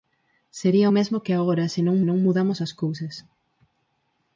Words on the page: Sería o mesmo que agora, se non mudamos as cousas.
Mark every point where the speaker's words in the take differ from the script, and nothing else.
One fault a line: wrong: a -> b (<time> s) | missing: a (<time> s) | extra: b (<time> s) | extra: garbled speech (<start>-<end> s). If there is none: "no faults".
extra: non (2.1 s)